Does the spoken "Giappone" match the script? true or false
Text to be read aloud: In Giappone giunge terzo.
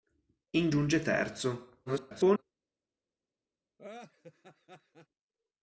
false